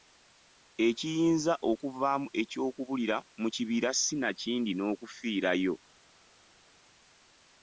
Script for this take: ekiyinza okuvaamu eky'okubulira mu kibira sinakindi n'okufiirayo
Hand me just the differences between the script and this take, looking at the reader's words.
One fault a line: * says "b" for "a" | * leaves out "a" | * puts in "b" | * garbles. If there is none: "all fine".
all fine